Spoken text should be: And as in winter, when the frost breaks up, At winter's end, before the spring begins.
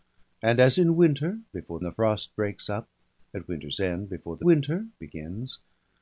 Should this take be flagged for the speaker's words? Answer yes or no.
yes